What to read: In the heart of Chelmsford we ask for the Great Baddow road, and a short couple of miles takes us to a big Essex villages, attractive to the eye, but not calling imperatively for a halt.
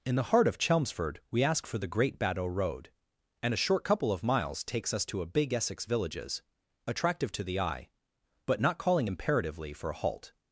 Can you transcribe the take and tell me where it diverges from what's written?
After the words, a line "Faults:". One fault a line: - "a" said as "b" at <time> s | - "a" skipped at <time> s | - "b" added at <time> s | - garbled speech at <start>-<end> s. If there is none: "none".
In the heart of Chelmsford we ask for the Great Baddow road, and a short couple of miles takes us to a big Essex villages, attractive to the eye, but not calling imperatively for a halt.
Faults:
none